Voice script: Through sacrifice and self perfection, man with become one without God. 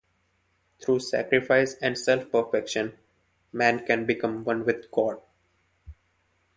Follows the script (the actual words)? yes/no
no